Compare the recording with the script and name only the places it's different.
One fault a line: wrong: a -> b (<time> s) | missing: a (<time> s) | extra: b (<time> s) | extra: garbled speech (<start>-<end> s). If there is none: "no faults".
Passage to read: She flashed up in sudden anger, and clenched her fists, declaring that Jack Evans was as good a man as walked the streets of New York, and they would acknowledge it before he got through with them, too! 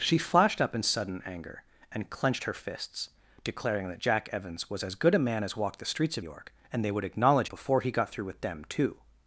missing: New (6.2 s)
missing: it (7.5 s)